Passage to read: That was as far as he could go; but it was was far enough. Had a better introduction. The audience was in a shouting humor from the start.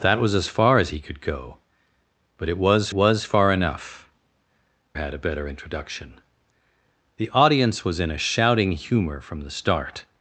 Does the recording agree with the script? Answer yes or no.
yes